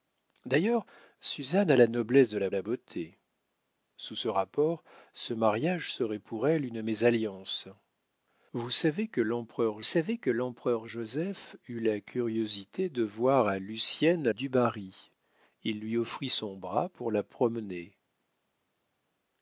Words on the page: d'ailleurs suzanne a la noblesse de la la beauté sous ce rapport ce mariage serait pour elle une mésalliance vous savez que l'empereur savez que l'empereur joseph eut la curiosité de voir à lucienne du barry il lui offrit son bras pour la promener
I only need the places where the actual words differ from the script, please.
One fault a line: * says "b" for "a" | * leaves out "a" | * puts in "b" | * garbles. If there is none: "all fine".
all fine